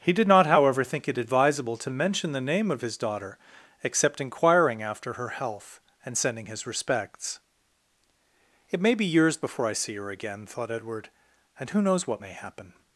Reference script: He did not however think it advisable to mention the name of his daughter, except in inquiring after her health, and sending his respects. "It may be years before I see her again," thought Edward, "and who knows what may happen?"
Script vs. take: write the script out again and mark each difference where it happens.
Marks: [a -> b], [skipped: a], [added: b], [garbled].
He did not however think it advisable to mention the name of his daughter, except [skipped: in] inquiring after her health, and sending his respects. "It may be years before I see her again," thought Edward, "and who knows what may happen?"